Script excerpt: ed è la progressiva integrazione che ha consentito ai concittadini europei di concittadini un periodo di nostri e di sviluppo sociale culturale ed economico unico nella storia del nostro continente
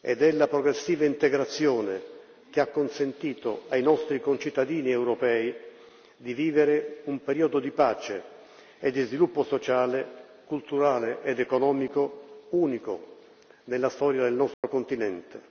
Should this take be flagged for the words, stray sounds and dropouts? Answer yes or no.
yes